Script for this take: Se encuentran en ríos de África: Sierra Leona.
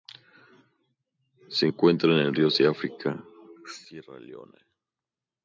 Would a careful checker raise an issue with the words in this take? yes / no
no